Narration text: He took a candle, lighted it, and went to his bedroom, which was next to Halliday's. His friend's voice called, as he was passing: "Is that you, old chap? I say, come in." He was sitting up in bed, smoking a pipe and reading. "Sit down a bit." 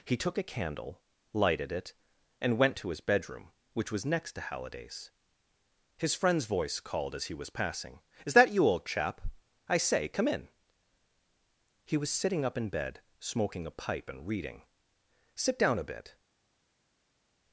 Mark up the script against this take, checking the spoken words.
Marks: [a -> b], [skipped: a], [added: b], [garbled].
He took a candle, lighted it, and went to his bedroom, which was next to Halliday's. His friend's voice called, as he was passing: "Is that you, old chap? I say, come in." He was sitting up in bed, smoking a pipe and reading. "Sit down a bit."